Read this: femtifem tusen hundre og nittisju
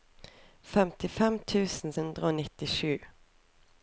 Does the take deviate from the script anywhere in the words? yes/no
no